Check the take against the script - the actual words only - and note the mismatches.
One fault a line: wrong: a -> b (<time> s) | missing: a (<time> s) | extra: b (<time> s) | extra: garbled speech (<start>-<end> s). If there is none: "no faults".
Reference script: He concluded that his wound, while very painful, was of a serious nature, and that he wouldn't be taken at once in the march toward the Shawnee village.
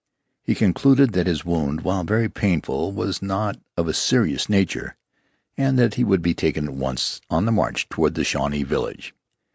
extra: not (3.2 s)
wrong: wouldn't -> would (6.1 s)
wrong: in -> on (7.3 s)